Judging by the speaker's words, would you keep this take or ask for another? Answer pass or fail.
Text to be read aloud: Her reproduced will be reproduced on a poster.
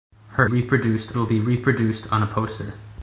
pass